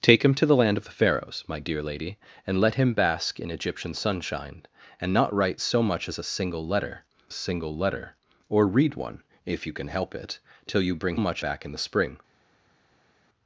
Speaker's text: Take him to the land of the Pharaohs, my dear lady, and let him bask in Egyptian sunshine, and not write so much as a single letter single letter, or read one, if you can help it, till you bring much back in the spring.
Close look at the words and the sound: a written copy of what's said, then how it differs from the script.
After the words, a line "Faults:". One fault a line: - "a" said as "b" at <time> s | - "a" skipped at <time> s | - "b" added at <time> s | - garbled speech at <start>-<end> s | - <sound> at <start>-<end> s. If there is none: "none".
Take him to the land of the Pharaohs, my dear lady, and let him bask in Egyptian sunshine, and not write so much as a single letter single letter, or read one, if you can help it, till you bring much back in the spring.
Faults:
none